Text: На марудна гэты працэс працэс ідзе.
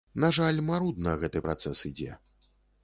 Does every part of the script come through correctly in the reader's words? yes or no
no